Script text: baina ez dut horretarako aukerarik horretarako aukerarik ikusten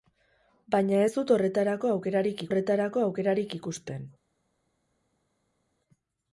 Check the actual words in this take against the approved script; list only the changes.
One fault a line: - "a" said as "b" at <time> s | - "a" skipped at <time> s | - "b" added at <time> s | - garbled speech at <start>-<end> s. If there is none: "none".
none